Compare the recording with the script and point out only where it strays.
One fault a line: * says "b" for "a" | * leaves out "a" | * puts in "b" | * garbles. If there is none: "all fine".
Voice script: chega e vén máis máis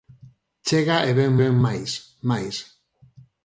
* puts in "vén"